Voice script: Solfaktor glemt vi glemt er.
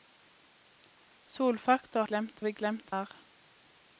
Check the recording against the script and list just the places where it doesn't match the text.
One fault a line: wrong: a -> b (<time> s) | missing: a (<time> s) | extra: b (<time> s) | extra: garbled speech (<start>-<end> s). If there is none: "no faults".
no faults